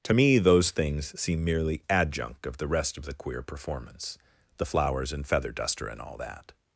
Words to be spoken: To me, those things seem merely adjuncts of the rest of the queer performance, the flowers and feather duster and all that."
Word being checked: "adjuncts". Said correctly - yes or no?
no